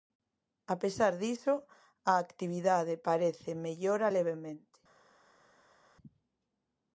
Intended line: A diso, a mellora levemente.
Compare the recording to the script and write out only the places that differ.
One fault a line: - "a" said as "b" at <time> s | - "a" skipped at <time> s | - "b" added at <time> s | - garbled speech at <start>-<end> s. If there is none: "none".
- "pesar" added at 0.8 s
- "actividade parece" added at 2.2 s